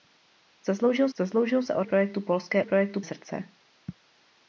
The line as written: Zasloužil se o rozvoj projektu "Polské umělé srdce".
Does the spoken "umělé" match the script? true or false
false